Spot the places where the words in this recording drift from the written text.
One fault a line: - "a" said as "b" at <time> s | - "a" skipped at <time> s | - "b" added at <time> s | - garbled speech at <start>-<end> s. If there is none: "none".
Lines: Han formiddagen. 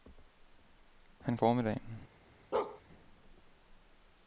none